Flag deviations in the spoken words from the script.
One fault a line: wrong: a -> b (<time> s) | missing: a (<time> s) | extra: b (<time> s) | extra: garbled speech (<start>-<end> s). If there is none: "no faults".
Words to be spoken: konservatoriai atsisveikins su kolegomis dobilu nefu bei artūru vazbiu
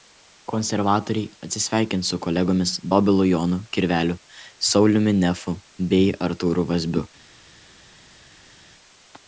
extra: jonu kirveliu sauliumi (3.3 s)